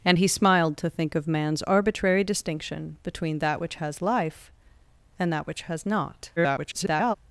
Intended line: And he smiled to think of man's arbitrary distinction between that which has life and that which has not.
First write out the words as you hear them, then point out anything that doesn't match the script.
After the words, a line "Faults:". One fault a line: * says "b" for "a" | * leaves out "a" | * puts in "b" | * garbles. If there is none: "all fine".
And he smiled to think of man's arbitrary distinction between that which has life and that which has not. [garbled]
Faults:
* garbles